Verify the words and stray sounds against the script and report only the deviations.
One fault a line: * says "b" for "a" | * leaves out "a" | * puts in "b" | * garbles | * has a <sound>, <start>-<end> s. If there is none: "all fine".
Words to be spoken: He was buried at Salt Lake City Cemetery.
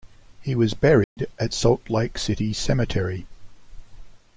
* has a dropout, 1.0-1.2 s